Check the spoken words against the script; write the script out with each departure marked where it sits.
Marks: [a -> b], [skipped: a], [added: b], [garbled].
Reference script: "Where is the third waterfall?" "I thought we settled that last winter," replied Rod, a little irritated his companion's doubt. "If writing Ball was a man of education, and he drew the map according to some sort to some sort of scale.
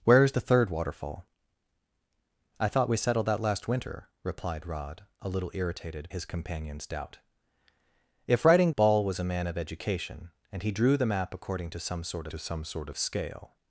"Where is the third waterfall?" "I thought we settled that last winter," replied Rod, a little irritated his companion's doubt. "If writing Ball was a man of education, and he drew the map according to some sort to some sort of scale.